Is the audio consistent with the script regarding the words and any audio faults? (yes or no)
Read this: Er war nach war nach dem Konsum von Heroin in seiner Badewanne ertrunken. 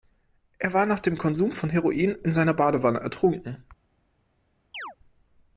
no